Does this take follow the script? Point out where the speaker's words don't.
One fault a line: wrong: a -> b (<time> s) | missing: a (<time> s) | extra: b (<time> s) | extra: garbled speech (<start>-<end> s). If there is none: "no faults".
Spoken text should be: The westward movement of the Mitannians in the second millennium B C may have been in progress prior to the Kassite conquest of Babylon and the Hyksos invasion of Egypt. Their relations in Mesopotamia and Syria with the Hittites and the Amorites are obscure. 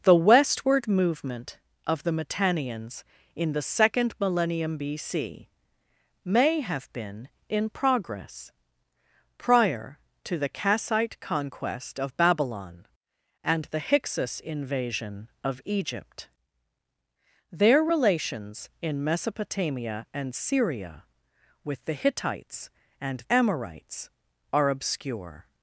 missing: the (23.2 s)